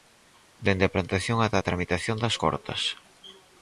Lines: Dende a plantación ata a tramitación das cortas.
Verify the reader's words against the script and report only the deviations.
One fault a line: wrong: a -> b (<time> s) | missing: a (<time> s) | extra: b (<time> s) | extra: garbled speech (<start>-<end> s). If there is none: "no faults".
no faults